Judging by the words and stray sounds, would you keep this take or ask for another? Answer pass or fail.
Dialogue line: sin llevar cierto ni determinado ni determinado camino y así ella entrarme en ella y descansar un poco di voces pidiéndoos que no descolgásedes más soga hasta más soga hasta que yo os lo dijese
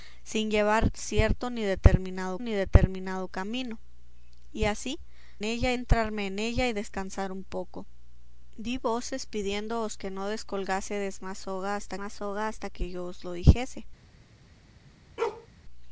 fail